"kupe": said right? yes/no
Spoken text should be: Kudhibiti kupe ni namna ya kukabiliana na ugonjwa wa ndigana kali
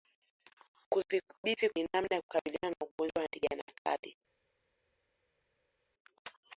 no